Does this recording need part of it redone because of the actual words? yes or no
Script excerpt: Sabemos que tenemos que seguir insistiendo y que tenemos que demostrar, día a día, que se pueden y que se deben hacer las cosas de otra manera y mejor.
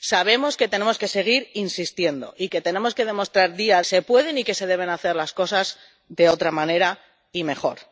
yes